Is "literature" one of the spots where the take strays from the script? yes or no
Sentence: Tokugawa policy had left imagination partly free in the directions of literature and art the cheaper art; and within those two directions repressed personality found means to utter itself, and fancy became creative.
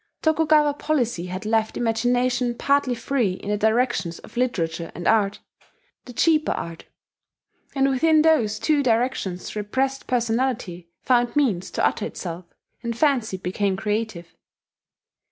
no